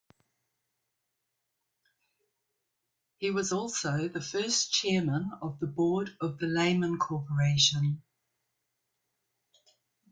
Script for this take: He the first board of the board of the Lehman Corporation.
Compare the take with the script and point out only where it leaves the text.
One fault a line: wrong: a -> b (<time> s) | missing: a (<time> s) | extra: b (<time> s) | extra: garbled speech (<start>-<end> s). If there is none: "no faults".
extra: was also (3.3 s)
wrong: board -> chairman (4.7 s)